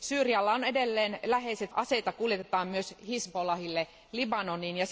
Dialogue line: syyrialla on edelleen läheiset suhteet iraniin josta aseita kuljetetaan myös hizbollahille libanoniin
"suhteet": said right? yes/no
no